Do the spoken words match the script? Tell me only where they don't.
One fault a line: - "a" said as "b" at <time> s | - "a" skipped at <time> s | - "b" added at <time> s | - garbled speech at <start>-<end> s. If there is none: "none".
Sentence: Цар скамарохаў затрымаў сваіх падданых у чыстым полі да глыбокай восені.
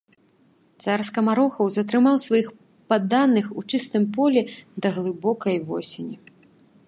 none